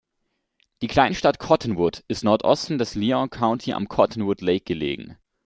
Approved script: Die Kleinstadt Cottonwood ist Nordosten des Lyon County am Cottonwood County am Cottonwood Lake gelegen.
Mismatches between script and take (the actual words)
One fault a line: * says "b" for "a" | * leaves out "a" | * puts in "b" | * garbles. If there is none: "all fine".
* leaves out "County am Cottonwood"